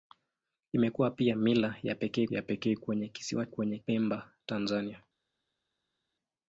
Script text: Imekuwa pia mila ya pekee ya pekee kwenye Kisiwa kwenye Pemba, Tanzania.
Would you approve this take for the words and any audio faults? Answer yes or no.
yes